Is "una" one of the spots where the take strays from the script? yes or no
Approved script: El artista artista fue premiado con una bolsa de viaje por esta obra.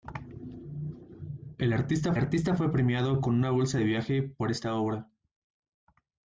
no